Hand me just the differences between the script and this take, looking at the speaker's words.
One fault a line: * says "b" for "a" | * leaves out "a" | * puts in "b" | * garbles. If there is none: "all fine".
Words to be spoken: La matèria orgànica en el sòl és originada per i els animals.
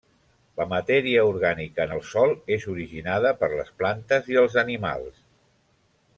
* puts in "les plantes"